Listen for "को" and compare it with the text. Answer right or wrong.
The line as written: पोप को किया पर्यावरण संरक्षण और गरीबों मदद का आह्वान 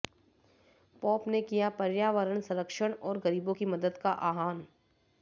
wrong